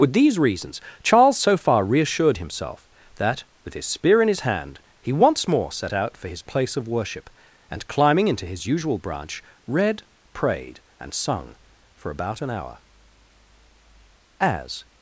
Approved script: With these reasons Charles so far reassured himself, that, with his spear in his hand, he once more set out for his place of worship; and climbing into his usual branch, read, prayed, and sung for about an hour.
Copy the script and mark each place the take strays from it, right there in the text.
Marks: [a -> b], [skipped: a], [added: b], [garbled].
With these reasons Charles so far reassured himself, that, with his spear in his hand, he once more set out for his place of worship; and climbing into his usual branch, read, prayed, and sung for about an hour. [added: As]